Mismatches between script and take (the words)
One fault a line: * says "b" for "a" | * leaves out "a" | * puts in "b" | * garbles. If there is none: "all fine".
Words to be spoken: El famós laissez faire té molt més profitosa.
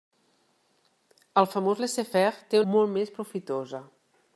all fine